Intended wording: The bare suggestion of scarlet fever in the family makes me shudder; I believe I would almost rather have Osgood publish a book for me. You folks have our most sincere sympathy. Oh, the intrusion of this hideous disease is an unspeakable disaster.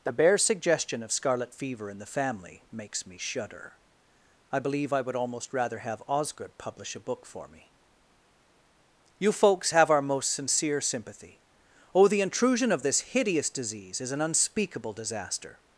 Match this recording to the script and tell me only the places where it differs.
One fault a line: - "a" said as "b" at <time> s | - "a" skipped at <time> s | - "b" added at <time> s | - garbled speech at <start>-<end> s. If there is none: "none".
none